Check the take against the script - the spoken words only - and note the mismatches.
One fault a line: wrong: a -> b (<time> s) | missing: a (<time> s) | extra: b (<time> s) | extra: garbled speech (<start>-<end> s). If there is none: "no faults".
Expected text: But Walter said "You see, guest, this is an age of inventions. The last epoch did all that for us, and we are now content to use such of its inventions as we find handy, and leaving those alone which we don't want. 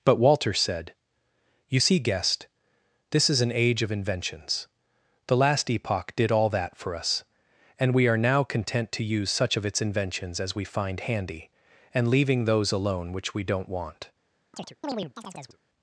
no faults